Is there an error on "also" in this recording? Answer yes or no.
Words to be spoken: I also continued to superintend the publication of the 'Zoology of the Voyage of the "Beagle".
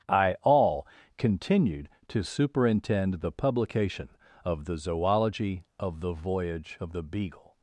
yes